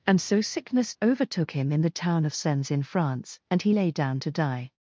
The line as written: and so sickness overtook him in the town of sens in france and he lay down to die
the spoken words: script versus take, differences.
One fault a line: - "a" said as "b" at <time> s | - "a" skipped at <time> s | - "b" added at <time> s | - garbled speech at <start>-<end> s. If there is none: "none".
none